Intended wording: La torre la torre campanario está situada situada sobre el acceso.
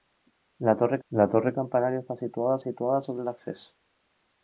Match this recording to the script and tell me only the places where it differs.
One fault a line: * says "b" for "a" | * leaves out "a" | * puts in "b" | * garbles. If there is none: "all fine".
all fine